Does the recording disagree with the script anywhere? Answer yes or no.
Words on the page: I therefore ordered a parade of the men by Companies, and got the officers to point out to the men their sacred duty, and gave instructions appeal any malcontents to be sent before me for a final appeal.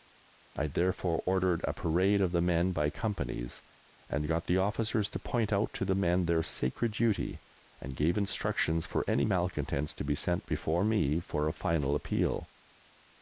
yes